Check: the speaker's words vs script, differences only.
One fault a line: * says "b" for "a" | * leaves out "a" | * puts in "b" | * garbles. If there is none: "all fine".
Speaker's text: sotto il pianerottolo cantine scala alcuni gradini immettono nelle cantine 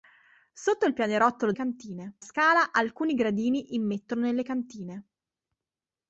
all fine